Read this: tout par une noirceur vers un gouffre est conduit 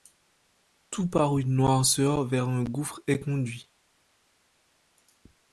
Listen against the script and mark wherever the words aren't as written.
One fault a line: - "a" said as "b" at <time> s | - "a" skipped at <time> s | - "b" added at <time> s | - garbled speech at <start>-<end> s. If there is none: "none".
none